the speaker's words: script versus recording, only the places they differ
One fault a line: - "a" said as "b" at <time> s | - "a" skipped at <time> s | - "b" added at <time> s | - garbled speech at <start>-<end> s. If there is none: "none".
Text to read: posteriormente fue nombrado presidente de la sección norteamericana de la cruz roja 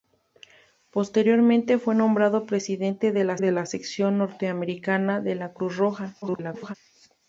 - "de la" added at 3.4 s
- garbled speech at 6.2-6.7 s